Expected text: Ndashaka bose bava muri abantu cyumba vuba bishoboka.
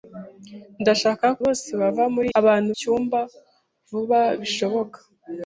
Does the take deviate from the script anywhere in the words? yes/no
no